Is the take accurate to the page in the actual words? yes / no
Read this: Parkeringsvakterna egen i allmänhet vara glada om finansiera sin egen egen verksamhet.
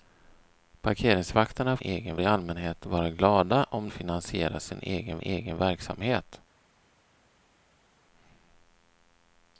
yes